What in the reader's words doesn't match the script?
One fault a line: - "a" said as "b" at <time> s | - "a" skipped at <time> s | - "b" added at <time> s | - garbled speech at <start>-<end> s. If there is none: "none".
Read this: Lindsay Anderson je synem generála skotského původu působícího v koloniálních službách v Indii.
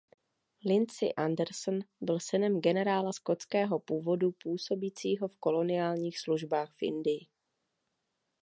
- "je" said as "byl" at 2.0 s